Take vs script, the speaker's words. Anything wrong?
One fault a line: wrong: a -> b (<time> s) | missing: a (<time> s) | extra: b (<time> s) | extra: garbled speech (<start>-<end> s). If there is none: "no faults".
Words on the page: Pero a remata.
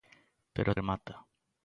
no faults